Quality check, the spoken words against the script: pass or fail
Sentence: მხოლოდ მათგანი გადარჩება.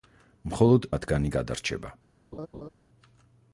pass